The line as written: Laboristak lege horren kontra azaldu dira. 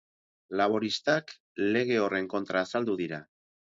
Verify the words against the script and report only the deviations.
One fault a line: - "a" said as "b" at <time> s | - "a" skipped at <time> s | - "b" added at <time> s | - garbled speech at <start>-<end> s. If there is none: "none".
none